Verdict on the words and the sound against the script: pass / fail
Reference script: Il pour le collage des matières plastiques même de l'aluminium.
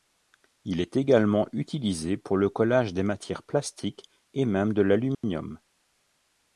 fail